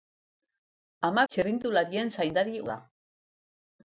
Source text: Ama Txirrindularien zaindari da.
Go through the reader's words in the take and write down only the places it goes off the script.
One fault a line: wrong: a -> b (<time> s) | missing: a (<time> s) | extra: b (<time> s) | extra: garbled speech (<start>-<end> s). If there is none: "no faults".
no faults